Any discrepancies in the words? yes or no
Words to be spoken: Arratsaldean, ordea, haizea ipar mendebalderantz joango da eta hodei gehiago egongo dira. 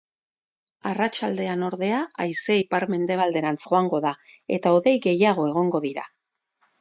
no